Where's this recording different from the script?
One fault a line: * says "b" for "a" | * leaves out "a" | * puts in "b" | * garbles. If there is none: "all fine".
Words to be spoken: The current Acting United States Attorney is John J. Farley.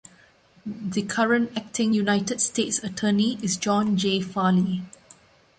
all fine